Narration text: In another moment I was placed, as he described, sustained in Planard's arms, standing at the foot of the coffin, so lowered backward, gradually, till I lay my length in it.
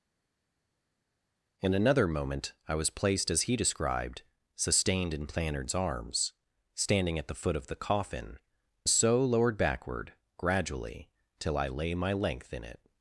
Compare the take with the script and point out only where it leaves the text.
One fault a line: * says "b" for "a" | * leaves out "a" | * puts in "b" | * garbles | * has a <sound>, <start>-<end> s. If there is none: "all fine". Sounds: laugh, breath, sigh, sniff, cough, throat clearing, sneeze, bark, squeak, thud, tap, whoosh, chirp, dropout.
all fine